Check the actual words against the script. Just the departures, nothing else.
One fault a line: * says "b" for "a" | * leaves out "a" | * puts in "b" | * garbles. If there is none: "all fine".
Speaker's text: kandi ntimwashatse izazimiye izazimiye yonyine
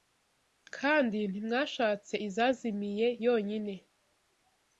* leaves out "izazimiye"